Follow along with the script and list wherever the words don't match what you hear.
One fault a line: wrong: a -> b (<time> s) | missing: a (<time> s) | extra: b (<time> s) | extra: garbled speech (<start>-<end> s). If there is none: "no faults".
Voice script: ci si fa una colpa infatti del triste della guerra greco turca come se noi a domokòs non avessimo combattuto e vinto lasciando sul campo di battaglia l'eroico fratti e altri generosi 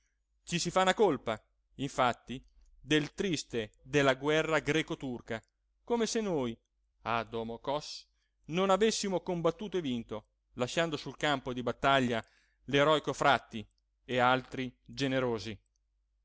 no faults